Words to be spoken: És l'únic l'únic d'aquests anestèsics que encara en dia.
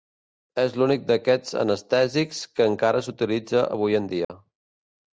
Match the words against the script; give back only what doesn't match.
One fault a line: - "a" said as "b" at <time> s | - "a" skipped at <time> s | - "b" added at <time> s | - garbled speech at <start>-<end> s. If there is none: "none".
- "l'únic" skipped at 1.1 s
- "s'utilitza avui" added at 3.1 s